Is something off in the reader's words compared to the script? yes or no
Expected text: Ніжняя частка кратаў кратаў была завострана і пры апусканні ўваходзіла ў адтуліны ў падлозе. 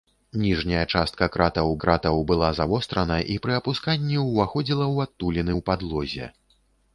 no